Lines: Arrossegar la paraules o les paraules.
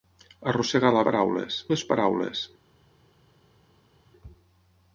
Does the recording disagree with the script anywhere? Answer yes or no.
no